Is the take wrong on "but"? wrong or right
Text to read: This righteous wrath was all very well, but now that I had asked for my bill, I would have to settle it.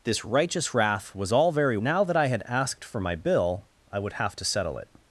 wrong